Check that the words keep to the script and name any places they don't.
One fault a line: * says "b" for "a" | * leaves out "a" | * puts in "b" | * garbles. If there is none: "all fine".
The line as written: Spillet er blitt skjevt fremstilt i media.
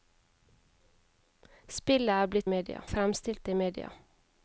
* says "media" for "skjevt"